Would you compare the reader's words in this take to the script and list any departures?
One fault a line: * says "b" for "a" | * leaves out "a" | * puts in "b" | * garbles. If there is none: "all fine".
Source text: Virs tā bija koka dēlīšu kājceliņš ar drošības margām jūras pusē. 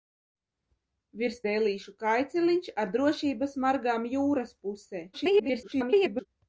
* leaves out "tā bija koka"
* garbles